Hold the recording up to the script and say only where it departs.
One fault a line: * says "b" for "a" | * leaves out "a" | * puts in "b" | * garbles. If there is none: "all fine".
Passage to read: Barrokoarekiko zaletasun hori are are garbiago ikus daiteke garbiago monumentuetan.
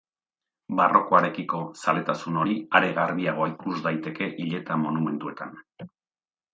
* leaves out "are"
* says "hileta" for "garbiago"